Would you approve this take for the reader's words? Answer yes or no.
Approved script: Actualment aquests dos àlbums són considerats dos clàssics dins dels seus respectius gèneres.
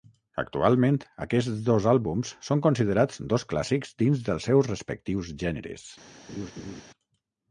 yes